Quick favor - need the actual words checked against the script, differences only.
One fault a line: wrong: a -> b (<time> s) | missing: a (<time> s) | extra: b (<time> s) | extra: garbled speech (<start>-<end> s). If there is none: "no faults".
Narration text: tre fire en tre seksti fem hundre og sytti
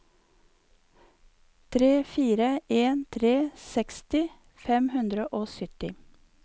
no faults